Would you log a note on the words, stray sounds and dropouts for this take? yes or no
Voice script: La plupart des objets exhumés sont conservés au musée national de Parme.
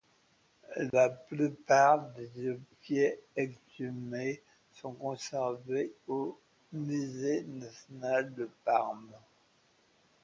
yes